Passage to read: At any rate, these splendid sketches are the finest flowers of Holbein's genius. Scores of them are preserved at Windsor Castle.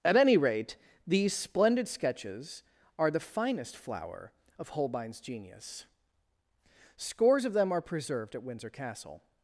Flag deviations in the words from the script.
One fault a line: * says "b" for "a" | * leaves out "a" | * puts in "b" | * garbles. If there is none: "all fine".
* says "flower" for "flowers"